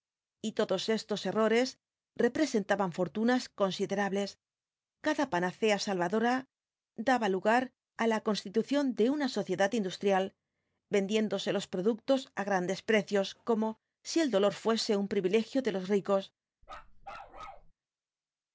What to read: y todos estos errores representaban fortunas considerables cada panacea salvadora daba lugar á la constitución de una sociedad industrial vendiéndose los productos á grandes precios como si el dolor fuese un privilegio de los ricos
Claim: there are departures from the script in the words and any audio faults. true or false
true